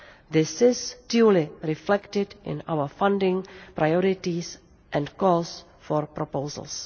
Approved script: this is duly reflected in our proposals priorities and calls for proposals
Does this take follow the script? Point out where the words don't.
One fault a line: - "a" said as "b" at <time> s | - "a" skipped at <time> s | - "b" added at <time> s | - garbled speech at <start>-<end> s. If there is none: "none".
- "proposals" said as "funding" at 3.0 s